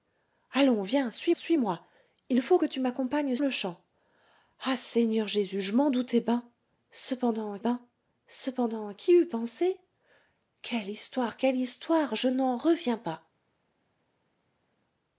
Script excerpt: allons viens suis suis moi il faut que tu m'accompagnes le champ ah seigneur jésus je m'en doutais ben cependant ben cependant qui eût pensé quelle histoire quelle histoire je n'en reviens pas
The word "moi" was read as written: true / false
true